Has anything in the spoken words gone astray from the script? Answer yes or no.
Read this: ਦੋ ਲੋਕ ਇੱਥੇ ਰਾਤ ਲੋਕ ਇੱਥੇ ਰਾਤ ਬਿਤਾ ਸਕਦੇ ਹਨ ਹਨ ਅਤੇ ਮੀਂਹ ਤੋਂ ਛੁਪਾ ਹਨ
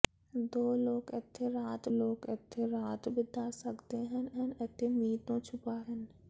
no